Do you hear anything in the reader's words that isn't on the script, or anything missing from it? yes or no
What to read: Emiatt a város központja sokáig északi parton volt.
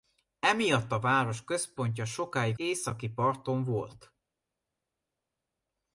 no